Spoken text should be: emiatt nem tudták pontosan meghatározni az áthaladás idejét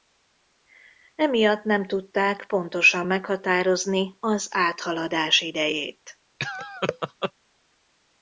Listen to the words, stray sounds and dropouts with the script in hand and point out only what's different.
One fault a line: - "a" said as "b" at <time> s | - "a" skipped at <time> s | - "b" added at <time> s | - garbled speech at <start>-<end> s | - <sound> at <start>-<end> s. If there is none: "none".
- laugh at 6.4-7.3 s